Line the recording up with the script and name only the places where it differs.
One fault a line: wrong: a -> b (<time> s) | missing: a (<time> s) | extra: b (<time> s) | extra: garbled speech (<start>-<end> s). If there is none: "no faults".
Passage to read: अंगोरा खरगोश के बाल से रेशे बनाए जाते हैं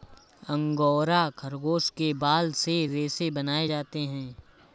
no faults